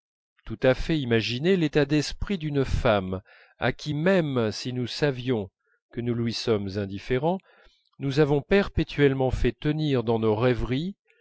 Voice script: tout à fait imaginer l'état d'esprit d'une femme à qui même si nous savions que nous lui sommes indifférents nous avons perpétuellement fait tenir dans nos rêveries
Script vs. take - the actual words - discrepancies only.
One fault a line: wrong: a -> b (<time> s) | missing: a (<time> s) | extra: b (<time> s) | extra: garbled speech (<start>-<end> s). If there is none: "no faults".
no faults